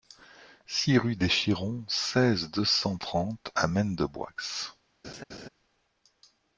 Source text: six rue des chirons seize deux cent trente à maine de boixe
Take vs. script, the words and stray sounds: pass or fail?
fail